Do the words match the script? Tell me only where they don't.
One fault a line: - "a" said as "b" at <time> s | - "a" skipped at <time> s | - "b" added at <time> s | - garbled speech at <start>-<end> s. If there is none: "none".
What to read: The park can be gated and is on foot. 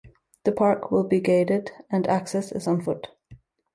- "can" said as "will" at 0.9 s
- "access" added at 2.1 s